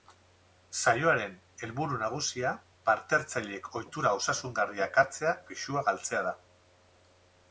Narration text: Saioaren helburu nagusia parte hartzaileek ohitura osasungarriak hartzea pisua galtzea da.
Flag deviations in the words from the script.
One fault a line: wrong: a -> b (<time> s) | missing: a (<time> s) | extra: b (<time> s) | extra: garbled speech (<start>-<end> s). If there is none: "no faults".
no faults